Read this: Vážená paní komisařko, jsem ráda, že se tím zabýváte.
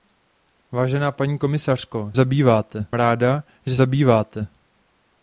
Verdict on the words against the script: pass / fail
fail